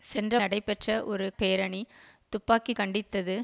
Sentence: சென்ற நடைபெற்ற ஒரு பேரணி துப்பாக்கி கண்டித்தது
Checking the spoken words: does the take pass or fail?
pass